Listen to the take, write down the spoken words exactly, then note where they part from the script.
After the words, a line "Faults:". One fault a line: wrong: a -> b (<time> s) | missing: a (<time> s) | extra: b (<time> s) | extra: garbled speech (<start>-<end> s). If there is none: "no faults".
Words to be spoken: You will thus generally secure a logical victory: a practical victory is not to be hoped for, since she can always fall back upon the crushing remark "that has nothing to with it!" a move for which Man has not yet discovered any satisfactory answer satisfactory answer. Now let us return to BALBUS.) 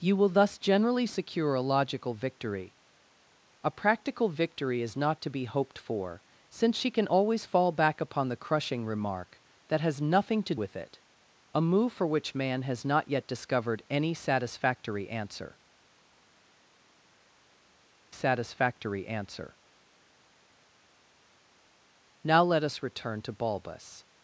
You will thus generally secure a logical victory: a practical victory is not to be hoped for, since she can always fall back upon the crushing remark "that has nothing to with it!" a move for which Man has not yet discovered any satisfactory answer satisfactory answer. Now let us return to BALBUS.)
Faults:
no faults